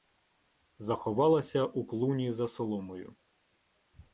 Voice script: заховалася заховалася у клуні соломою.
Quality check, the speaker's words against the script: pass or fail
fail